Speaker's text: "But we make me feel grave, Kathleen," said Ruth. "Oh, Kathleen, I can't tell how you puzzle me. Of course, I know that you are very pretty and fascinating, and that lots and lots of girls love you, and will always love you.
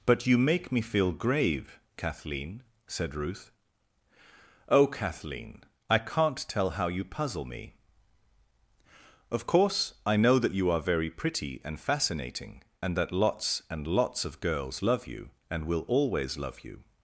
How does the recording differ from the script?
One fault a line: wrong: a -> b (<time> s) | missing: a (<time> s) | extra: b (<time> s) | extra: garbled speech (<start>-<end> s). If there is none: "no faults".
wrong: we -> you (0.2 s)